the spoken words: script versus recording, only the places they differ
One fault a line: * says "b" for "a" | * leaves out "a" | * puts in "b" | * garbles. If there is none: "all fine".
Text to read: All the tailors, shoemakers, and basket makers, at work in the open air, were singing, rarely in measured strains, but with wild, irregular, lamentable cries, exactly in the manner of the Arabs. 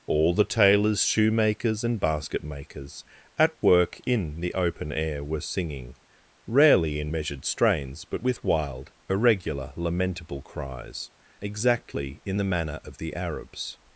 all fine